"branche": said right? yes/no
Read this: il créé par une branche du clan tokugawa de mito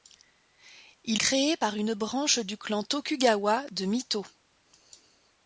yes